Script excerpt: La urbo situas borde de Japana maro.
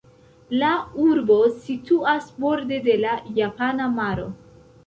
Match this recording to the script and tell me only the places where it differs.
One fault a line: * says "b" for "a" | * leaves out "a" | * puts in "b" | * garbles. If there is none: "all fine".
* puts in "la"